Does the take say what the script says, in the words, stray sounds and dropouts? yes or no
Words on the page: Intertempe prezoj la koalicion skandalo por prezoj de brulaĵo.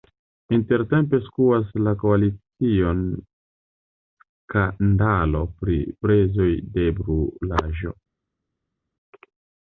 no